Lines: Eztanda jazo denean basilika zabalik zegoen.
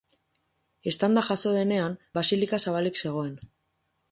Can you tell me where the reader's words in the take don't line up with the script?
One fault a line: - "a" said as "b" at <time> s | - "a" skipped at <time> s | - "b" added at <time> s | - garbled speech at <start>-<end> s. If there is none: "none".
none